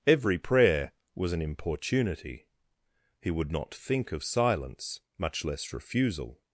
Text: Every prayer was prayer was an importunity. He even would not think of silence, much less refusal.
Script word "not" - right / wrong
right